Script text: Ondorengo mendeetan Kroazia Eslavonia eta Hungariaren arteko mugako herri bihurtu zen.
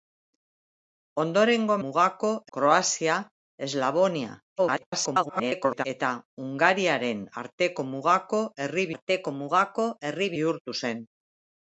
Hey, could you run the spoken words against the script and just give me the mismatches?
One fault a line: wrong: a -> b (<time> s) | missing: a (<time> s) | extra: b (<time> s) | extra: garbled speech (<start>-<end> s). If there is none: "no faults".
wrong: mendeetan -> mugako (1.8 s)
extra: garbled speech (4.6-5.9 s)
extra: arteko mugako herri (9.0 s)